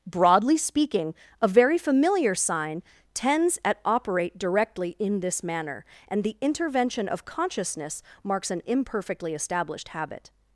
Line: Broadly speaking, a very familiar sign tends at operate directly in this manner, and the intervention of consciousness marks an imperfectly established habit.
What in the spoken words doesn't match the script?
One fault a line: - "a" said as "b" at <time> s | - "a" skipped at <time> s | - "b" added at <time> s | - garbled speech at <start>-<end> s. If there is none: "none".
none